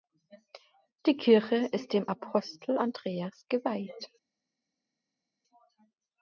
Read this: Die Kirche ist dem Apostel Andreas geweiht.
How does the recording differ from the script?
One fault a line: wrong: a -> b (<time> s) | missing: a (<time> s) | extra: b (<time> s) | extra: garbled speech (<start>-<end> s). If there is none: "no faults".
no faults